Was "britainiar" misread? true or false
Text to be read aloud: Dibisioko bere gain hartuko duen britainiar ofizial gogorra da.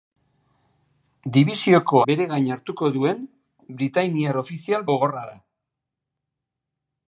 false